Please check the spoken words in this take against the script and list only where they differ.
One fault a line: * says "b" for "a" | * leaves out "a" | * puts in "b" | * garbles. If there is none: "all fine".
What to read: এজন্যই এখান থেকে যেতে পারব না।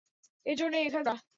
* leaves out "থেকে যেতে পারব"